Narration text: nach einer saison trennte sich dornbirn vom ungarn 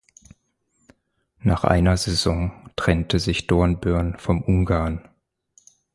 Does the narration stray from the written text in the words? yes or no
no